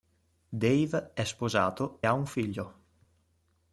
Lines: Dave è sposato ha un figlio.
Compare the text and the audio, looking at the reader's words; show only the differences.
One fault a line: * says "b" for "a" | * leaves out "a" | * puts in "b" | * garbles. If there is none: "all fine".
all fine